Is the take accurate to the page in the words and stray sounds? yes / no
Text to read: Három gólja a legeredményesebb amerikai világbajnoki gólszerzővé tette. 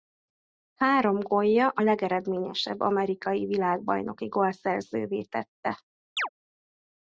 no